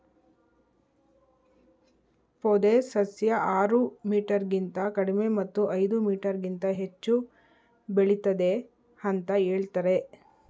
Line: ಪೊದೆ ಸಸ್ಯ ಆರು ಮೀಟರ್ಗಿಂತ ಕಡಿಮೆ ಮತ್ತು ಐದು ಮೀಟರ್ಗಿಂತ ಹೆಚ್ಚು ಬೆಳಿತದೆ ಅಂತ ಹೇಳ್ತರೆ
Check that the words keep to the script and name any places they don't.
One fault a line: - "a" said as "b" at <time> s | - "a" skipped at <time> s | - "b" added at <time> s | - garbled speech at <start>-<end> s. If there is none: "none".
none